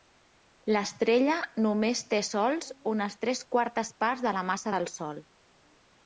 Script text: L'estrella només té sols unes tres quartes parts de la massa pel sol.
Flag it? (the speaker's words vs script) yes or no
yes